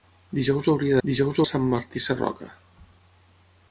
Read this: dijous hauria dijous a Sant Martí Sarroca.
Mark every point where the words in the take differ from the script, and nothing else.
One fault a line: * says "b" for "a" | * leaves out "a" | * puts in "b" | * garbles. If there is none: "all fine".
all fine